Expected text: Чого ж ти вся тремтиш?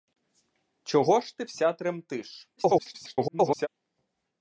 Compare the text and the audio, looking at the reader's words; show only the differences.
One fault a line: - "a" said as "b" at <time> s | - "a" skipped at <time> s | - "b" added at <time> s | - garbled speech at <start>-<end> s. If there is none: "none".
- garbled speech at 2.6-3.7 s